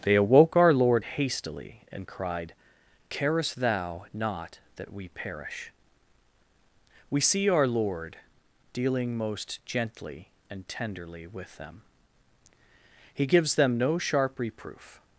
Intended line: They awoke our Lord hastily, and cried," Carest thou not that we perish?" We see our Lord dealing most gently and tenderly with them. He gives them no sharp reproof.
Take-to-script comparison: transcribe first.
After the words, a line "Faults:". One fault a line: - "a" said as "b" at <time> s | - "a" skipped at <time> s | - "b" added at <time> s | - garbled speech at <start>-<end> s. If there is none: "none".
They awoke our Lord hastily, and cried," Carest thou not that we perish?" We see our Lord dealing most gently and tenderly with them. He gives them no sharp reproof.
Faults:
none